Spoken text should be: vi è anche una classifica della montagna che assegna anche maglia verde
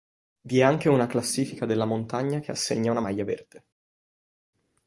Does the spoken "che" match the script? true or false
true